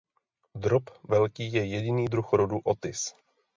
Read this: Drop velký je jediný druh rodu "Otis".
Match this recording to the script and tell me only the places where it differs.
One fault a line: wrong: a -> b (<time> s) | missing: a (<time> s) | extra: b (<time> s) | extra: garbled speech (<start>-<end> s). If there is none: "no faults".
no faults